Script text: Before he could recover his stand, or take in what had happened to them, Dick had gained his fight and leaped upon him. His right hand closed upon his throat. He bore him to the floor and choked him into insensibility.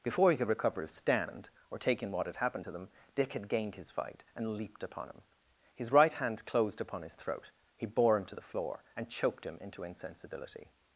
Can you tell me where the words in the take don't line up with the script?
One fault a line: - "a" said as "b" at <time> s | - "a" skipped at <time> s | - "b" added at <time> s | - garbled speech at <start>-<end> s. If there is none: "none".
none